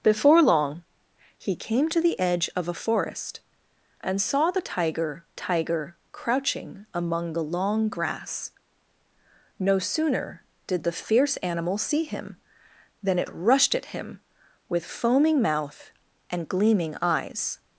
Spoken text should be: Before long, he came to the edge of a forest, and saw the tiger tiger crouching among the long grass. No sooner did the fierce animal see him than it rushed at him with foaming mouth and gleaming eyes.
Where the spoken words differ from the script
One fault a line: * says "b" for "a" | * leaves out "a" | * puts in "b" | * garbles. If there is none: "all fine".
all fine